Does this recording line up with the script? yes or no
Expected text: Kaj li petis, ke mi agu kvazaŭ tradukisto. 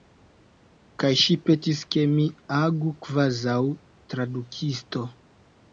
no